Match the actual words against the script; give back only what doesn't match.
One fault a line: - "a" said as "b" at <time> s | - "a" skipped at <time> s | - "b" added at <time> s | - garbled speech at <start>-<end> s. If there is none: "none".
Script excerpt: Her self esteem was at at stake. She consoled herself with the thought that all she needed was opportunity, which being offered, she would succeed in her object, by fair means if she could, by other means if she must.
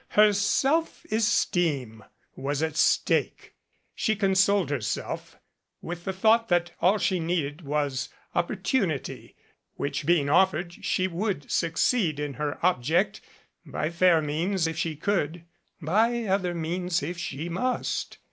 - "at" skipped at 2.8 s